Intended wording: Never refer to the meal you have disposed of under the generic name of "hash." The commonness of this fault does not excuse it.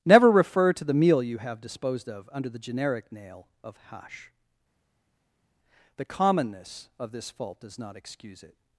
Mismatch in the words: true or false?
true